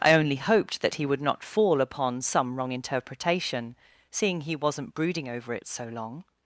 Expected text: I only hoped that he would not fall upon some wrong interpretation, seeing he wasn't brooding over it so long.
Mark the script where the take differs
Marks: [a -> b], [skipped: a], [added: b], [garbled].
I only hoped that he would not fall upon some wrong interpretation, seeing he wasn't brooding over it so long.